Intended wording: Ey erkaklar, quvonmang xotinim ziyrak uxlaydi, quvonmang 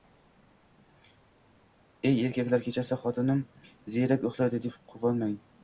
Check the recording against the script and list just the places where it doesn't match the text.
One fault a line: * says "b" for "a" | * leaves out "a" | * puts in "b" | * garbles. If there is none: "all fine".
* says "kechasi" for "quvonmang"
* puts in "deb"